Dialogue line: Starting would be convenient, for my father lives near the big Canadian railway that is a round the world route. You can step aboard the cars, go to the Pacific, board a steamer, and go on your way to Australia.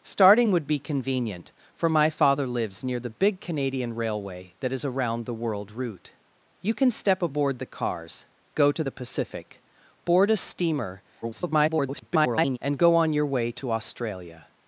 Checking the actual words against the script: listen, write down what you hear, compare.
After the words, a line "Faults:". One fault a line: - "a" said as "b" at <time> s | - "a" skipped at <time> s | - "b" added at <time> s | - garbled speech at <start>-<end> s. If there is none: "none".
Starting would be convenient, for my father lives near the big Canadian railway that is a round the world route. You can step aboard the cars, go to the Pacific, board a steamer, [garbled] and go on your way to Australia.
Faults:
- garbled speech at 11.2-12.6 s